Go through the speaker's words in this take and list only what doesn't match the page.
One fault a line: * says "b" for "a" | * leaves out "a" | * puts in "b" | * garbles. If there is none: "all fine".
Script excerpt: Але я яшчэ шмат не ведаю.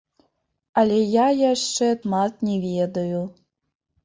all fine